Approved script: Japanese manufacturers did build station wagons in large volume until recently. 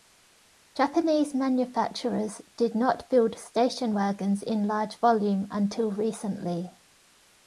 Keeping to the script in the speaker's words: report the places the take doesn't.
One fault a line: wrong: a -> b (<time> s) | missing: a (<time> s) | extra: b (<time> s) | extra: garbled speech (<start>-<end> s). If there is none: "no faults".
extra: not (2.7 s)